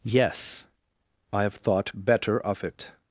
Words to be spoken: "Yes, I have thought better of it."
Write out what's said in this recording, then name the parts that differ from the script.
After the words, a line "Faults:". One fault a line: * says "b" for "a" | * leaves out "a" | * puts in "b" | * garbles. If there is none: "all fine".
"Yes, I have thought better of it."
Faults:
all fine